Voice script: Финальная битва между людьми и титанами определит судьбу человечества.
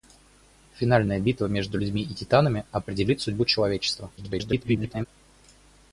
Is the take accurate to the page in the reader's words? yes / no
no